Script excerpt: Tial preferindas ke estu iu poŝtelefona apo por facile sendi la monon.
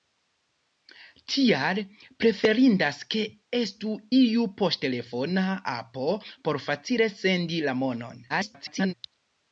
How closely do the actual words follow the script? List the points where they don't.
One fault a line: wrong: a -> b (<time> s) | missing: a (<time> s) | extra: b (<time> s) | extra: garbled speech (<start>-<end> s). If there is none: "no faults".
extra: garbled speech (8.3-8.9 s)